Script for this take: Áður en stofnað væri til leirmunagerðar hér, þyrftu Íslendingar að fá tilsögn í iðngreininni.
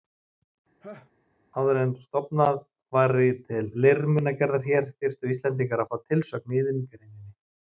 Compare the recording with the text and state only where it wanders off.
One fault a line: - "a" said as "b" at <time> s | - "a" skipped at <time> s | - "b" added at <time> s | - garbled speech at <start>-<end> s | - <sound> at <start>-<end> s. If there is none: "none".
- laugh at 0.8-1.1 s